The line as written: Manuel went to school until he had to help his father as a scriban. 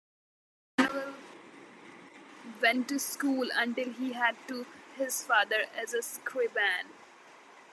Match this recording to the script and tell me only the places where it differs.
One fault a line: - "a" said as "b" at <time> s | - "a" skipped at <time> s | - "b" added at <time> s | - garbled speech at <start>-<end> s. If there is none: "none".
- "help" skipped at 4.7 s